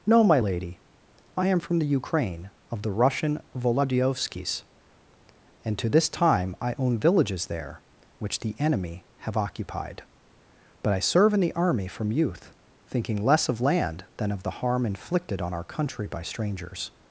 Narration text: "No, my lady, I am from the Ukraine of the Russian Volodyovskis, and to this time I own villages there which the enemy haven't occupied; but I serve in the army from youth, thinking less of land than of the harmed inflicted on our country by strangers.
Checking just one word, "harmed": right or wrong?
wrong